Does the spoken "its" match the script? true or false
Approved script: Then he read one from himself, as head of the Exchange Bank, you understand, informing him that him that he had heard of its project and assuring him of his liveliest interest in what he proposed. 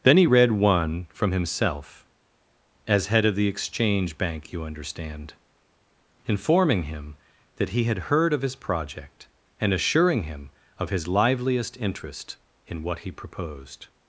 false